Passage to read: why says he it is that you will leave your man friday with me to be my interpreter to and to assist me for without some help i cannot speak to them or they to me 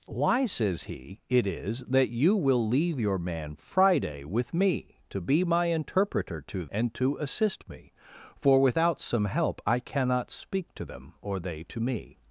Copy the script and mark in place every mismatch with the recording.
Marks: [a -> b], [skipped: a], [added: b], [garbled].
why says he it is that you will leave your man friday with me to be my interpreter to and to assist me for without some help i cannot speak to them or they to me